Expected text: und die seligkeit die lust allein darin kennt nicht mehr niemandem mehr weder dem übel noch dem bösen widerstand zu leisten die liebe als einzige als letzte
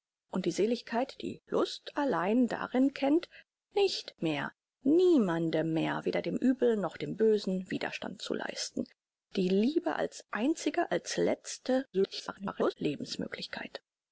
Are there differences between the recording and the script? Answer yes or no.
yes